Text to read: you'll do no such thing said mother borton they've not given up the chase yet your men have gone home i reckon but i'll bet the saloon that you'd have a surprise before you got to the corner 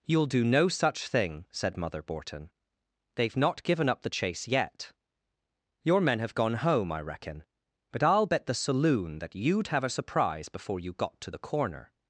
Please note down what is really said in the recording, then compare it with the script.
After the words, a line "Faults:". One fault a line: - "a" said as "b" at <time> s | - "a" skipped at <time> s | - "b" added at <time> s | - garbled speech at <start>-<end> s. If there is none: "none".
you'll do no such thing said mother borton they've not given up the chase yet your men have gone home i reckon but i'll bet the saloon that you'd have a surprise before you got to the corner
Faults:
none